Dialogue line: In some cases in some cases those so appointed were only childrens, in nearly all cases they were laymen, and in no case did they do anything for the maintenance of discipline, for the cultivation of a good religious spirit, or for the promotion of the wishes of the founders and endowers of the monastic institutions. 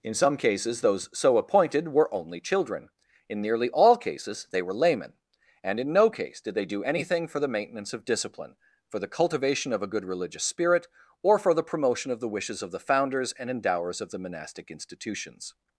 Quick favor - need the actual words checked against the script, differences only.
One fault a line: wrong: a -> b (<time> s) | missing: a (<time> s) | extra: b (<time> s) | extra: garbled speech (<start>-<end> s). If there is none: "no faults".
missing: in some cases (0.8 s)
wrong: childrens -> children (2.4 s)